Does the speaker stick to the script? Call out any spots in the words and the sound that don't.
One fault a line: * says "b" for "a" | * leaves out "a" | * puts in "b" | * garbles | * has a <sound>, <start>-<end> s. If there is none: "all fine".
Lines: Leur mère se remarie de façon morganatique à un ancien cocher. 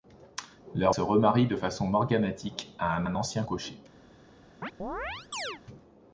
* leaves out "mère"
* puts in "un"
* has a chirp, 4.6-5.6 s